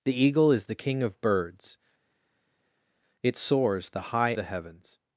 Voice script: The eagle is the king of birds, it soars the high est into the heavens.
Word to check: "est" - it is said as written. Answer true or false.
false